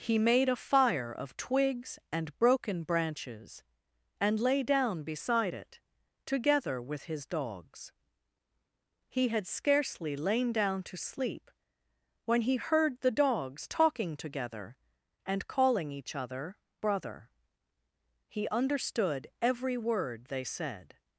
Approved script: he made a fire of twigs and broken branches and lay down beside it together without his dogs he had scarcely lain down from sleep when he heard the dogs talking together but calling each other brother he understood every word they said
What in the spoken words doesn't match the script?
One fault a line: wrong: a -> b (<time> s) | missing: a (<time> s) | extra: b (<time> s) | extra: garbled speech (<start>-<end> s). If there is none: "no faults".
wrong: without -> with (6.8 s)
wrong: from -> to (10.8 s)
wrong: but -> and (15.3 s)